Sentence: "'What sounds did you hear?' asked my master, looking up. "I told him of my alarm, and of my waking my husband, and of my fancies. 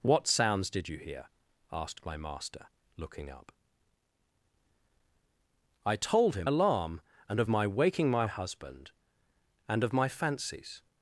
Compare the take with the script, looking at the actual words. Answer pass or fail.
fail